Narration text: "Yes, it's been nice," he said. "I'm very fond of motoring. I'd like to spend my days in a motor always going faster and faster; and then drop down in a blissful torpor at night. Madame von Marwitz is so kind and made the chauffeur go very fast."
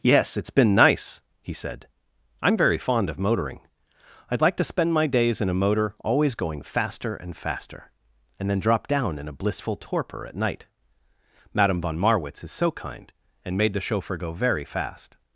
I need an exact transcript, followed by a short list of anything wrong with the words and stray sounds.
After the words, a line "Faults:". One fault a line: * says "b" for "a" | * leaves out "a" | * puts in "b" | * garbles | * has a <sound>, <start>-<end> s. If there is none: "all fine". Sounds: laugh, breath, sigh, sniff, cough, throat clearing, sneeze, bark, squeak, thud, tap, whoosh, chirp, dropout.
"Yes, it's been nice," he said. "I'm very fond of motoring. I'd like to spend my days in a motor always going faster and faster; and then drop down in a blissful torpor at night. Madame von Marwitz is so kind and made the chauffeur go very fast."
Faults:
all fine